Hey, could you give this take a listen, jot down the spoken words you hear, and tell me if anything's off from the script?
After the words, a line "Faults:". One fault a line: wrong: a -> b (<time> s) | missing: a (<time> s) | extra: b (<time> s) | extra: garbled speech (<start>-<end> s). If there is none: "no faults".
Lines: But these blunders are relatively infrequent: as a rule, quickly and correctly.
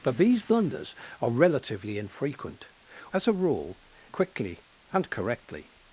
But these blunders are relatively infrequent: as a rule, quickly and correctly.
Faults:
no faults